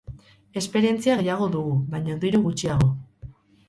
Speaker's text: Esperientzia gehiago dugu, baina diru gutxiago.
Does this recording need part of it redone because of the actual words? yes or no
no